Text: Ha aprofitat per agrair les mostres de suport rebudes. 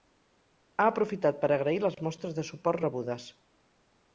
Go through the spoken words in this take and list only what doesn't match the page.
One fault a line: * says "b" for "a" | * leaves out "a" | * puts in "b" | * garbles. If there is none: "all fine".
all fine